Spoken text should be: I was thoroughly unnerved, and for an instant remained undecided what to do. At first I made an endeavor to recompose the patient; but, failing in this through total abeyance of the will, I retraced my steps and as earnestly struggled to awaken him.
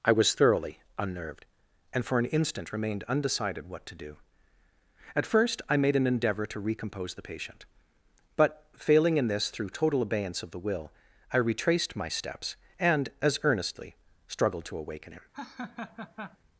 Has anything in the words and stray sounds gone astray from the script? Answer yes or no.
yes